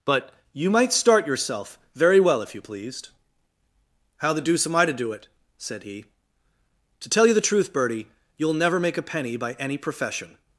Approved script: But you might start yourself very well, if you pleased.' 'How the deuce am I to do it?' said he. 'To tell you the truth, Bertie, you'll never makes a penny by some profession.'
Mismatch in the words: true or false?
true